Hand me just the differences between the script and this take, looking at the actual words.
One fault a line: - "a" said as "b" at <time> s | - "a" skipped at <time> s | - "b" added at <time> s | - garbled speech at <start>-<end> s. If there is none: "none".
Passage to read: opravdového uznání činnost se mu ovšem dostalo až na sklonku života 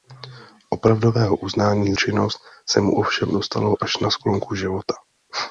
none